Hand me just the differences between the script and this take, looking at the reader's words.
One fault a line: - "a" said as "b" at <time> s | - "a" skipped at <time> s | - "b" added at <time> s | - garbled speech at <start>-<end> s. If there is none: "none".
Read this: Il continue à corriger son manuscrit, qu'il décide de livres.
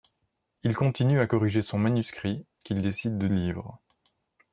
none